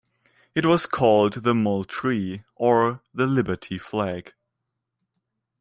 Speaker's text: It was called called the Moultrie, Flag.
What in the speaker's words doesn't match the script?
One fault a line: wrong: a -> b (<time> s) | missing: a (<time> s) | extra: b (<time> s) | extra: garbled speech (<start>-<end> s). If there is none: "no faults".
wrong: called -> the Moultrie or (1.4 s)
wrong: Moultrie -> Liberty (3.3 s)